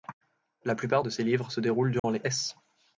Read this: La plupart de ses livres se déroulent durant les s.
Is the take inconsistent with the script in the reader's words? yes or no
no